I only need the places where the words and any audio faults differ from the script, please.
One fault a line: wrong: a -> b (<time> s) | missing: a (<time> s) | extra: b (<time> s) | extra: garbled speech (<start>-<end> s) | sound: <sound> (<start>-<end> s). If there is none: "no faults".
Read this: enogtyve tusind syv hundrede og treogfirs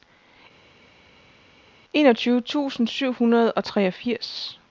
no faults